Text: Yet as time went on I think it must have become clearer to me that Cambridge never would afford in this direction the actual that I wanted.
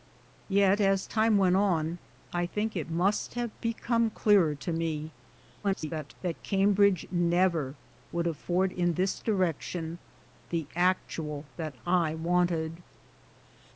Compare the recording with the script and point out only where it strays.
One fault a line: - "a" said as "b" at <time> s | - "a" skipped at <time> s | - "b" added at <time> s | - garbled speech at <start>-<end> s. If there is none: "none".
- garbled speech at 5.6-6.1 s